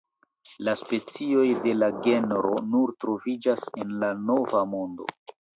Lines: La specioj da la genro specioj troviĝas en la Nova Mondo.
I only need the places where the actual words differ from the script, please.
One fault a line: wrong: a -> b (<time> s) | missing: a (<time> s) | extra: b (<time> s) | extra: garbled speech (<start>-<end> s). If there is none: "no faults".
wrong: da -> de (1.6 s)
wrong: specioj -> nur (2.8 s)